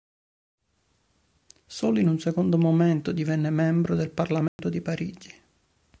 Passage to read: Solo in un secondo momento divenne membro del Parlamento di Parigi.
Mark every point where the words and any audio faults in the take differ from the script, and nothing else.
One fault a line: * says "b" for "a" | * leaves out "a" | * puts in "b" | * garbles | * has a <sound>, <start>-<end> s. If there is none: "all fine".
* has a dropout, 4.5-4.6 s